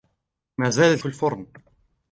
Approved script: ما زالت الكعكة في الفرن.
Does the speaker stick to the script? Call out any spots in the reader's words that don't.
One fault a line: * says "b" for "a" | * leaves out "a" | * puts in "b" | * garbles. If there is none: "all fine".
* leaves out "الكعكة"